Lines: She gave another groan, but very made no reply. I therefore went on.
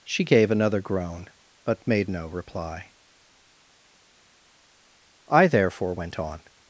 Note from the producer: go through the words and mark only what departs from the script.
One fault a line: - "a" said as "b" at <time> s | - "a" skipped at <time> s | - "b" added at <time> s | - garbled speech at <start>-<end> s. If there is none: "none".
- "very" skipped at 1.9 s